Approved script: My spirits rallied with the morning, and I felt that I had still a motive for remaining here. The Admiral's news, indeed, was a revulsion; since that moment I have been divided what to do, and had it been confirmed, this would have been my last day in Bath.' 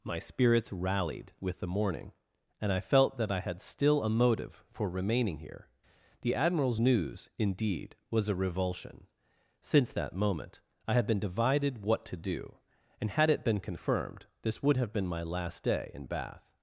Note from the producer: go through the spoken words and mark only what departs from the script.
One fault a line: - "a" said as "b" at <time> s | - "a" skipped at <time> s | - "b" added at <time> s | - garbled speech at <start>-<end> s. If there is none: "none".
- "have" said as "had" at 10.9 s